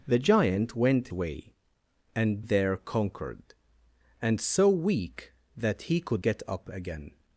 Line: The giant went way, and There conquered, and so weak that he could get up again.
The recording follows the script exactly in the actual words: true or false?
true